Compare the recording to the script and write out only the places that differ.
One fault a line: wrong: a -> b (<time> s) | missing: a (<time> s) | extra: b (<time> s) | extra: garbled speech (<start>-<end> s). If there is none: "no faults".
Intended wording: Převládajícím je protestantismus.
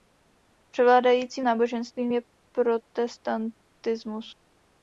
extra: náboženstvím (1.4 s)